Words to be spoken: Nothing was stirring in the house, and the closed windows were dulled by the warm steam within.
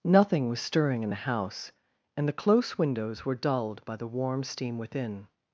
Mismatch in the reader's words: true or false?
true